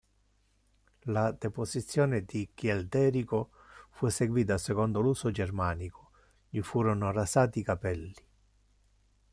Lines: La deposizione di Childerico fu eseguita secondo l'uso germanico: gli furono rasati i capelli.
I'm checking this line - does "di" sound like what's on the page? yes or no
yes